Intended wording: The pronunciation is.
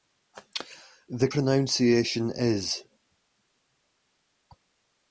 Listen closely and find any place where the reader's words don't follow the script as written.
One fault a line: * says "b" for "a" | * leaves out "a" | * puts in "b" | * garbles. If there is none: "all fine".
all fine